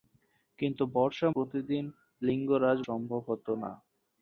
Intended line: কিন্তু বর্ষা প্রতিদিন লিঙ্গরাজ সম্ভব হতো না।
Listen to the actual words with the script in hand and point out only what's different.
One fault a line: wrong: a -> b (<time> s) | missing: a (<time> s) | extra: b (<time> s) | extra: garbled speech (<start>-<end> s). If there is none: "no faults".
no faults